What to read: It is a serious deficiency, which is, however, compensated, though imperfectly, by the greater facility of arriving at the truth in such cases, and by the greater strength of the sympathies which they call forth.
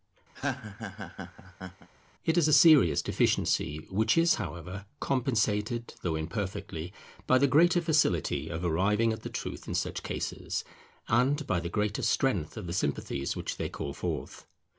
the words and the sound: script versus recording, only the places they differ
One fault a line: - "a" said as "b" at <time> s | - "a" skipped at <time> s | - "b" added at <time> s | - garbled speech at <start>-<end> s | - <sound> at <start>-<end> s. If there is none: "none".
- laugh at 0.3-1.9 s